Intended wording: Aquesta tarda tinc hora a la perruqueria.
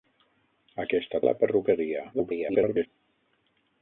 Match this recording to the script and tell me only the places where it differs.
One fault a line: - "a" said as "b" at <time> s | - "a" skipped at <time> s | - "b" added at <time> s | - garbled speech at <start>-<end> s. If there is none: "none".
- "tarda tinc hora" skipped at 1.2 s
- garbled speech at 2.1-2.9 s